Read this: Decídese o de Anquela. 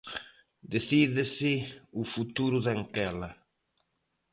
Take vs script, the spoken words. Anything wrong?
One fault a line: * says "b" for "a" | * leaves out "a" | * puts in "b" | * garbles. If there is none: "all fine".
* puts in "futuro"